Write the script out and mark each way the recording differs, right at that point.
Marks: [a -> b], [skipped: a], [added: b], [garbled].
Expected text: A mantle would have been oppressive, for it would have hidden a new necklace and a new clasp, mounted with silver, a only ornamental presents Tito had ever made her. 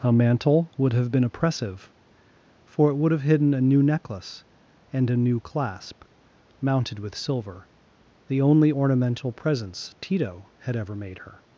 A mantle would have been oppressive, for it would have hidden a new necklace and a new clasp, mounted with silver, [a -> the] only ornamental presents Tito had ever made her.